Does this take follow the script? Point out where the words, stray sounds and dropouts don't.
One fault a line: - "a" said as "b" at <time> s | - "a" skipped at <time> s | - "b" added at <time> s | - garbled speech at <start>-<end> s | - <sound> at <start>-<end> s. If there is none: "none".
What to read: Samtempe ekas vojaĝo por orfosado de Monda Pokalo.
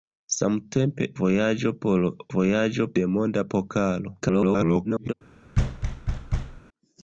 - "ekas" skipped at 1.1 s
- "orfosado" said as "vojaĝo" at 2.3 s
- garbled speech at 4.2-5.1 s
- thud at 5.5-6.6 s